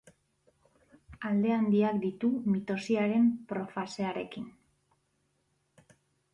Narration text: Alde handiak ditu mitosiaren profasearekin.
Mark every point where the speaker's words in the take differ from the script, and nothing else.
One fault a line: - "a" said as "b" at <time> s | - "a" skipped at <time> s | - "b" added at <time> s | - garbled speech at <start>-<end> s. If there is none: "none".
none